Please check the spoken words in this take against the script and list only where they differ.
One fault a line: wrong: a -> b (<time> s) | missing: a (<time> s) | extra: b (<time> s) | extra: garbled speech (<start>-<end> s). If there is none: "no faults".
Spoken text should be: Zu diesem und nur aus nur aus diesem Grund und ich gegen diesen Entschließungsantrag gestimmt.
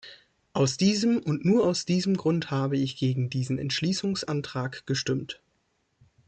wrong: Zu -> Aus (0.5 s)
missing: nur aus (1.8 s)
wrong: und -> habe (2.5 s)